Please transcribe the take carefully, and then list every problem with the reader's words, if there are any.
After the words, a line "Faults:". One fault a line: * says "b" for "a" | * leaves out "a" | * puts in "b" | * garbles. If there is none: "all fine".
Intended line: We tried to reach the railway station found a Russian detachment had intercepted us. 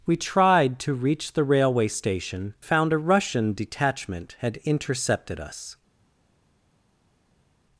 We tried to reach the railway station found a Russian detachment had intercepted us.
Faults:
all fine